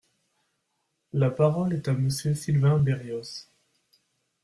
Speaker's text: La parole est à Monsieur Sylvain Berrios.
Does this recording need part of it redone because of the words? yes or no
no